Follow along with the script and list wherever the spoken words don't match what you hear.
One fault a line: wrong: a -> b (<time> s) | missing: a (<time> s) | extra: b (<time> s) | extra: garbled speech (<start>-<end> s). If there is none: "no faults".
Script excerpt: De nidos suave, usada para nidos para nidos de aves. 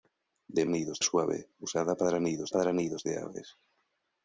no faults